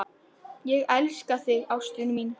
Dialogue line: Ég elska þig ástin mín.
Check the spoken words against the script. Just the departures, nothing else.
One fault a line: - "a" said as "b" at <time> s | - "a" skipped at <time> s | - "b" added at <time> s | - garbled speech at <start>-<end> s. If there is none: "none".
none